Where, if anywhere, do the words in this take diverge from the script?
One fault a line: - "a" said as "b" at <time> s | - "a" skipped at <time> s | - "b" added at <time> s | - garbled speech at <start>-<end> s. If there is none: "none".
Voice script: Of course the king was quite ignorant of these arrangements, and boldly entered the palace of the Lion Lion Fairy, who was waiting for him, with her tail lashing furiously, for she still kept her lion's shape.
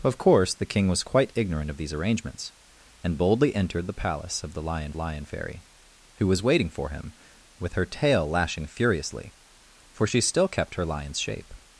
none